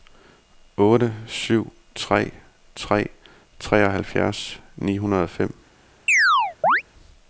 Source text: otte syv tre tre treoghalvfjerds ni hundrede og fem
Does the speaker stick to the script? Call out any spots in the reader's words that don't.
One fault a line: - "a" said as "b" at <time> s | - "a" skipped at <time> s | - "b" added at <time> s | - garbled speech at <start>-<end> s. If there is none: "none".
none